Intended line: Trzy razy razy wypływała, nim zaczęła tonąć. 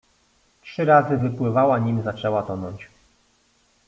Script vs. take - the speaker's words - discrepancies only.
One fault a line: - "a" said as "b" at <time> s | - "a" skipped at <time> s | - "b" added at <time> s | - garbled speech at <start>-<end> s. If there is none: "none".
- "razy" skipped at 1.2 s